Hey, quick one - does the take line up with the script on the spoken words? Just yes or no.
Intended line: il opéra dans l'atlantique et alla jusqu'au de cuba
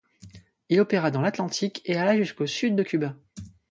no